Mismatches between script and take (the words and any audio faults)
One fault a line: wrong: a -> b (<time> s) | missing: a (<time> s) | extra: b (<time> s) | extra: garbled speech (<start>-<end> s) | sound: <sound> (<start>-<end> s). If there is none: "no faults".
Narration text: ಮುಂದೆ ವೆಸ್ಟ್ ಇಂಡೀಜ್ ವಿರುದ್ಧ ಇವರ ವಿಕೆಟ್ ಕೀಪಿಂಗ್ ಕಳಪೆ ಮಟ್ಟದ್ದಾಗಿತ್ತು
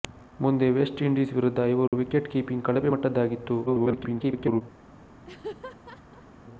sound: dropout (1.9-1.9 s)
extra: garbled speech (3.7-4.6 s)
sound: laugh (5.2-6.3 s)